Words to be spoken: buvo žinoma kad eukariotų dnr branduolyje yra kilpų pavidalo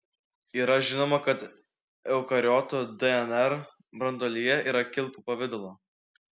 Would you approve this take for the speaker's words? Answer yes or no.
no